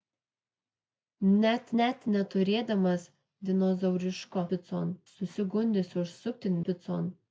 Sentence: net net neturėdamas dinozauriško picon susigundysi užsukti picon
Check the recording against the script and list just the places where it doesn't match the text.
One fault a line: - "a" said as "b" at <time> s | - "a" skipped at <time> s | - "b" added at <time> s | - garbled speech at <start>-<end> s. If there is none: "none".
none